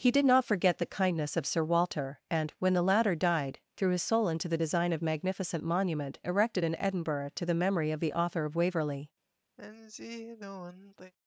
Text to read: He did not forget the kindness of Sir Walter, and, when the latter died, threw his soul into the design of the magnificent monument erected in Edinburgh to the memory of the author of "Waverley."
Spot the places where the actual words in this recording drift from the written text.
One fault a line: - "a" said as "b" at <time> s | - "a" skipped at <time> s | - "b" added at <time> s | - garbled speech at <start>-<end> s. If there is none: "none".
- "the" skipped at 5.0 s